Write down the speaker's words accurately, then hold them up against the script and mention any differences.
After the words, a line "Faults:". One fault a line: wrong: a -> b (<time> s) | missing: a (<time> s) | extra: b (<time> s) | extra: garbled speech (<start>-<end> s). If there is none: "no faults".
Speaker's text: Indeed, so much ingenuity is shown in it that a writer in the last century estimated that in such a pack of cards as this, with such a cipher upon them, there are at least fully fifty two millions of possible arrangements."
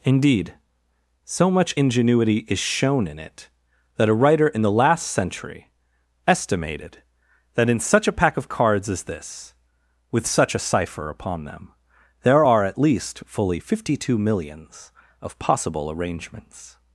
Indeed, so much ingenuity is shown in it that a writer in the last century estimated that in such a pack of cards as this, with such a cipher upon them, there are at least fully fifty two millions of possible arrangements."
Faults:
no faults